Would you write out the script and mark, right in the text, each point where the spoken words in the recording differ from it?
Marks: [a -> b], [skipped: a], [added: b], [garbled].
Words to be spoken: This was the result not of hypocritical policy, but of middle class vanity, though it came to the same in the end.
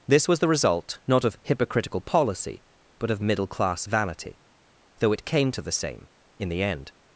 This was the result not of hypocritical policy, but of middle class vanity, though it came to the same in the end.